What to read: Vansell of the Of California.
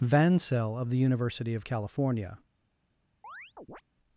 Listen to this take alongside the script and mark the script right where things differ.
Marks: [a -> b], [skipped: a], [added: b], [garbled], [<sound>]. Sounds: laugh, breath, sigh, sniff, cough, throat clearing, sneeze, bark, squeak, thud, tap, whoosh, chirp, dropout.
Vansell of the [added: University] Of California. [chirp]